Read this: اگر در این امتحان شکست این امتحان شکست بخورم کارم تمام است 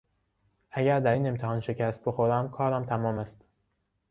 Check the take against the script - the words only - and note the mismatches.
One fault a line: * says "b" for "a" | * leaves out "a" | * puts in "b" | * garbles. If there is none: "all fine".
* leaves out "این امتحان شکست"